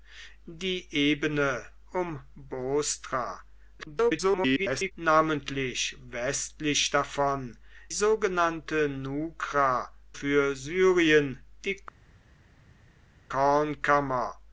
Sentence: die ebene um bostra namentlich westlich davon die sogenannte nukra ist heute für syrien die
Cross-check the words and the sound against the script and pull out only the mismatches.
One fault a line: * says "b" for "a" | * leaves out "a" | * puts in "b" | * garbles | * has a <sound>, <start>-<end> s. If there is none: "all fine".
* garbles
* leaves out "die"
* leaves out "ist heute"